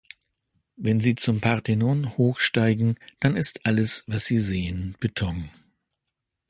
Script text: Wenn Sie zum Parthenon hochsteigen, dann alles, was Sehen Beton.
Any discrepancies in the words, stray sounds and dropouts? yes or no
yes